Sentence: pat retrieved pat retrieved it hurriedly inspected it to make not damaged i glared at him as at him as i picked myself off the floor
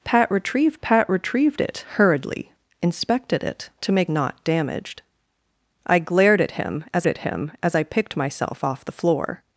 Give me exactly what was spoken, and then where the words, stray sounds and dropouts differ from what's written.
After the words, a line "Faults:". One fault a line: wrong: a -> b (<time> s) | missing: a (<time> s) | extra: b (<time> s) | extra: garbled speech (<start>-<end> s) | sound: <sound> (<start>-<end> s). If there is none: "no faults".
pat retrieved pat retrieved it hurriedly inspected it to make not damaged i glared at him as at him as i picked myself off the floor
Faults:
no faults